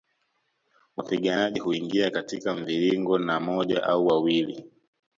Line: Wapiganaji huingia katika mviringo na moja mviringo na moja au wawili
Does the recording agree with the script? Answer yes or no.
no